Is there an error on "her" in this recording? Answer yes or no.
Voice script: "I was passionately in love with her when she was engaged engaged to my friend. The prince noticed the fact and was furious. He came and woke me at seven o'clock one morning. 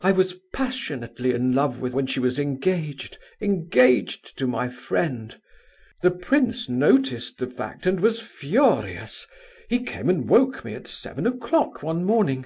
yes